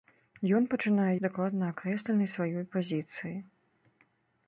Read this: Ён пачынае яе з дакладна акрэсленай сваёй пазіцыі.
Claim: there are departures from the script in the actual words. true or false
true